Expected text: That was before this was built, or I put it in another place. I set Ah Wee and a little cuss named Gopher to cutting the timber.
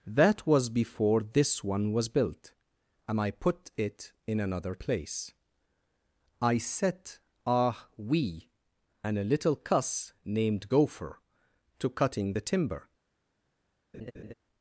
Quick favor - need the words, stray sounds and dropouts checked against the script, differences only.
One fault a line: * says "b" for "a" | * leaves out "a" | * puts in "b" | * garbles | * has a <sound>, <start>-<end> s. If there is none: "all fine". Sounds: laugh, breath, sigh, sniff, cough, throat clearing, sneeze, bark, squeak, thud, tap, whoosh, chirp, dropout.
* puts in "one"
* says "and" for "or"
* has a laugh, 13.9-14.3 s